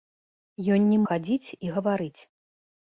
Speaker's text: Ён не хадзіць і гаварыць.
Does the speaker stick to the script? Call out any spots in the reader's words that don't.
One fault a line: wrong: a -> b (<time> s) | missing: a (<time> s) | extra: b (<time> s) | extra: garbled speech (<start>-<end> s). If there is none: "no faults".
no faults